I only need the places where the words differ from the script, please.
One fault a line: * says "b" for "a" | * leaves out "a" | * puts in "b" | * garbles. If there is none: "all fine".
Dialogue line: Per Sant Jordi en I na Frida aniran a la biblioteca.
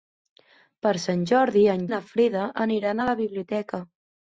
all fine